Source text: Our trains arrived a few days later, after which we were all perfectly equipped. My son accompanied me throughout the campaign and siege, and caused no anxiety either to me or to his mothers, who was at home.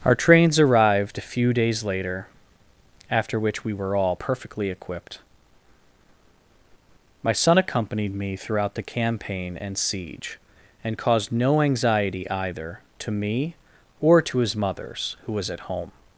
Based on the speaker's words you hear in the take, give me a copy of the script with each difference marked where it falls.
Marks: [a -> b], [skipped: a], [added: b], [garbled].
Our trains arrived a few days later, after which we were all perfectly equipped. My son accompanied me throughout the campaign and siege, and caused no anxiety either to me or to his mothers, who was at home.